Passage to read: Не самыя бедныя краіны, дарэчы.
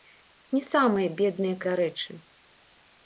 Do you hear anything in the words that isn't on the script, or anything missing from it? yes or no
yes